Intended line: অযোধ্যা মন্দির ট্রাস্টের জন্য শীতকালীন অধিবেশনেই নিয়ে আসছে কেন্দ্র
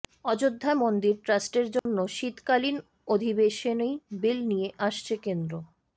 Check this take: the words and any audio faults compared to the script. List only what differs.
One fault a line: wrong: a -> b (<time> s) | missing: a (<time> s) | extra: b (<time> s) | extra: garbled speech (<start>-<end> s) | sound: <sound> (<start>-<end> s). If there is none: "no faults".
sound: dropout (1.8-1.9 s)
extra: বিল (4.2 s)